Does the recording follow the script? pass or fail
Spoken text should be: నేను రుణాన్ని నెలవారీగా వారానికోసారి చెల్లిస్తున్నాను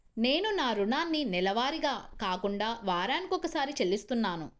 fail